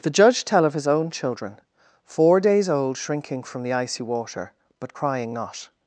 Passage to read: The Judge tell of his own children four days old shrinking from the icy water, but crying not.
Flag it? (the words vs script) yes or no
no